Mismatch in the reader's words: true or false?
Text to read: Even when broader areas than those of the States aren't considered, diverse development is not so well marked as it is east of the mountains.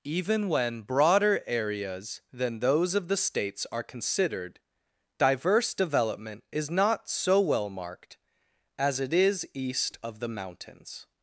true